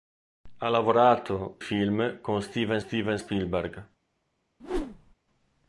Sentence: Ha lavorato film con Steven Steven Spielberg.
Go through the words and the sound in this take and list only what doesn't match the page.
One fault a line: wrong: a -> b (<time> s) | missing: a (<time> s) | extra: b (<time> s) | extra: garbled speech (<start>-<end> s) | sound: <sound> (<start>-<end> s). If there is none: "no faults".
sound: whoosh (4.6-5.1 s)